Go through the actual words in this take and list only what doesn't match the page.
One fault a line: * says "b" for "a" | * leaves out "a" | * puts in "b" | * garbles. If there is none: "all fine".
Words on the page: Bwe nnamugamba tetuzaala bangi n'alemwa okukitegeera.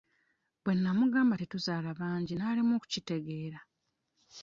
all fine